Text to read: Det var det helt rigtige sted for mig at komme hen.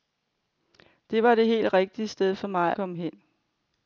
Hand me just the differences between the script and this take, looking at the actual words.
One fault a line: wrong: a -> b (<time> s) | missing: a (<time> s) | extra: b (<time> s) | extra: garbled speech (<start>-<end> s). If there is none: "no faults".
missing: at (2.7 s)